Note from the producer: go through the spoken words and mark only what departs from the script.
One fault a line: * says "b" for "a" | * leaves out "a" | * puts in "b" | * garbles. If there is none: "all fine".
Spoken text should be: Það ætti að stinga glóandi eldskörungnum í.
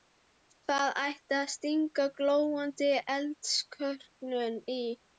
all fine